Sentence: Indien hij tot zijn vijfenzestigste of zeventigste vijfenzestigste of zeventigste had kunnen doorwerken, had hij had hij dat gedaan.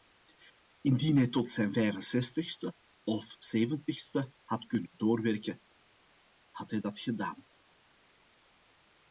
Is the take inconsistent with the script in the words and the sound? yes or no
yes